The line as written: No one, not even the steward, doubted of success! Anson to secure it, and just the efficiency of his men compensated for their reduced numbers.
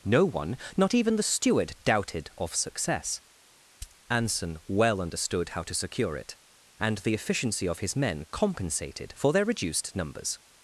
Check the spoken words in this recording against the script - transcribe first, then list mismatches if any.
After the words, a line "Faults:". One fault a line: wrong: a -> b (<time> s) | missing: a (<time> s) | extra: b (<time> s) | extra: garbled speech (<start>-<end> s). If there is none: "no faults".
No one, not even the steward, doubted of success! Anson well understood how to secure it, and the efficiency of his men compensated for their reduced numbers.
Faults:
extra: well understood how (4.7 s)
missing: just (7.0 s)